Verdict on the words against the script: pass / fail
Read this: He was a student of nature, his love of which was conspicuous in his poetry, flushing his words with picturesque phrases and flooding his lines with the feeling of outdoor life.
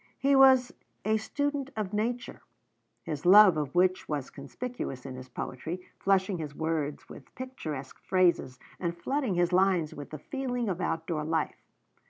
pass